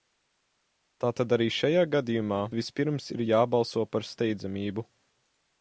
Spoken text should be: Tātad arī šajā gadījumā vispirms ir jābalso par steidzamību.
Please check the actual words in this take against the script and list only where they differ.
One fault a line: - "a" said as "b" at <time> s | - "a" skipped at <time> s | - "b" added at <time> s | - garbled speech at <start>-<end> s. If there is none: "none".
none